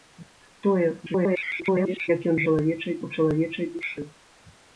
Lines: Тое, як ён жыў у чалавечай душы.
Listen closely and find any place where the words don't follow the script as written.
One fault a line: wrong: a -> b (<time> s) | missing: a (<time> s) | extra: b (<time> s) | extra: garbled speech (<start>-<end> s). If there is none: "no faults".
extra: garbled speech (1.1-2.1 s)
wrong: жыў -> чалавечай (2.5 s)